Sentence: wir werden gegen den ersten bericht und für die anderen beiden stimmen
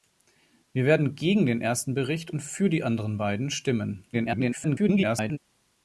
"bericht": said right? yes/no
yes